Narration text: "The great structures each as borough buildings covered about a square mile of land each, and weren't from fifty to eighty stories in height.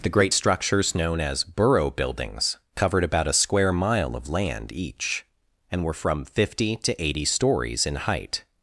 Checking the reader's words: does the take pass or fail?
fail